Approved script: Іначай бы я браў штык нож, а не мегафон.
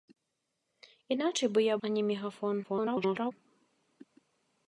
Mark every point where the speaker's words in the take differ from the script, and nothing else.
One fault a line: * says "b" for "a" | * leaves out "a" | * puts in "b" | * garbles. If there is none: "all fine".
* leaves out "браў штык нож"
* garbles